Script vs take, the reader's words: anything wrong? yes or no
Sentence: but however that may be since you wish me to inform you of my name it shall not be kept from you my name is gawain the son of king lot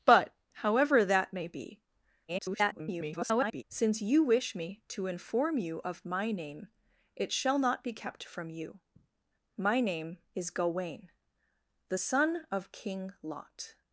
yes